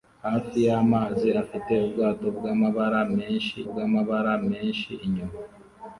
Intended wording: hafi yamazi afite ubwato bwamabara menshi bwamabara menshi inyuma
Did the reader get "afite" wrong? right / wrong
right